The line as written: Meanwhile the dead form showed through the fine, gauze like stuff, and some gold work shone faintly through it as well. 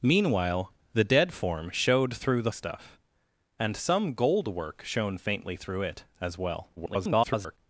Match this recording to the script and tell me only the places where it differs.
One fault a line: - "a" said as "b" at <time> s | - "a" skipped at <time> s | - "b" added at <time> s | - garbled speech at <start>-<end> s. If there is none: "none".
- "fine gauze like" skipped at 2.5 s
- garbled speech at 6.8-7.6 s